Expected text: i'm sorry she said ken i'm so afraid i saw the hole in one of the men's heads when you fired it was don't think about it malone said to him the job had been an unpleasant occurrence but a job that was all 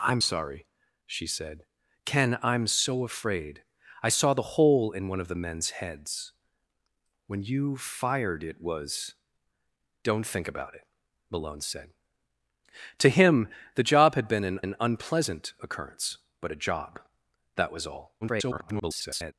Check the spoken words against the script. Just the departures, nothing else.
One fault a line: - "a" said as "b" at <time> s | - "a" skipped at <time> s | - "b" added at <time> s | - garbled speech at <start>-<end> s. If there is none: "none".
- "an" added at 14.6 s
- garbled speech at 18.2-19.3 s